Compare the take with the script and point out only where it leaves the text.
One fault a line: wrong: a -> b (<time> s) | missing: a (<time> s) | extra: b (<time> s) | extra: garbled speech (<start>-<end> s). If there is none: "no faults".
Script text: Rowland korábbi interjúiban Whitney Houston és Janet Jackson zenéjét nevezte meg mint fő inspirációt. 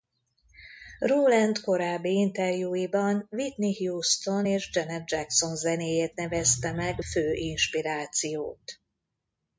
missing: mint (7.0 s)